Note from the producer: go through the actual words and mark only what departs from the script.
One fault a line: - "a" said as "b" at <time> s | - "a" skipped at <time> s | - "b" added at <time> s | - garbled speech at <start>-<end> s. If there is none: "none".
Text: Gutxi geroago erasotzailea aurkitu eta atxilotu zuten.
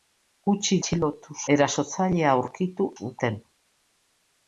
- "geroago" said as "atxilotu" at 0.8 s
- "eta atxilotu" skipped at 2.9 s